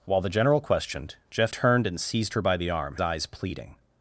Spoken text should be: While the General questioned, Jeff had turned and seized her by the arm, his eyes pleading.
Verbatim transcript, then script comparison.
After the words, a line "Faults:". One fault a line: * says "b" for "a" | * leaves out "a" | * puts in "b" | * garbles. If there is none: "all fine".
While the General questioned, Jeff turned and seized her by the arm, eyes pleading.
Faults:
* leaves out "had"
* leaves out "his"